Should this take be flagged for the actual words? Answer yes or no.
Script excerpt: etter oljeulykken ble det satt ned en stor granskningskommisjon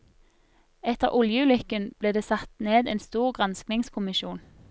no